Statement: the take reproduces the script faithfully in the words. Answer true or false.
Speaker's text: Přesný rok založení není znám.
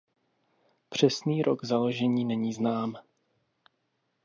true